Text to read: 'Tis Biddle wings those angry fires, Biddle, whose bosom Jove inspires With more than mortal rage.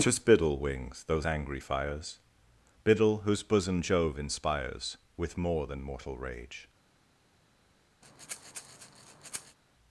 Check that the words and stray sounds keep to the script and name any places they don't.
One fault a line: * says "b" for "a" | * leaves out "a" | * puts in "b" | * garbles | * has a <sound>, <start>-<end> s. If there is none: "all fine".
* has a breath, 8.0-9.6 s